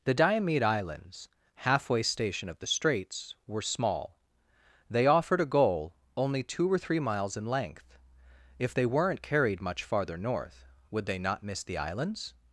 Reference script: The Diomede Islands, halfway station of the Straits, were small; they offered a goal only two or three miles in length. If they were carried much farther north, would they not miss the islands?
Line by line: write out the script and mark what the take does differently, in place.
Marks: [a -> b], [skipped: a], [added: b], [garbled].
The Diomede Islands, halfway station of the Straits, were small; they offered a goal only two or three miles in length. If they [were -> weren't] carried much farther north, would they not miss the islands?